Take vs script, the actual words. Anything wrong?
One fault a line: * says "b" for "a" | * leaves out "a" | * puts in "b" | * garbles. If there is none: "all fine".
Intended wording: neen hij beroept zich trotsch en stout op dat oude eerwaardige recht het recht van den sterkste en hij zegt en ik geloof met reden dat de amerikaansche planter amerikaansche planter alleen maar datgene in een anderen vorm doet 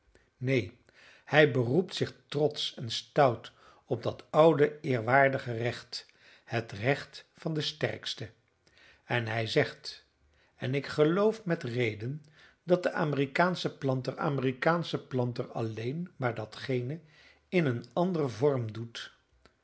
all fine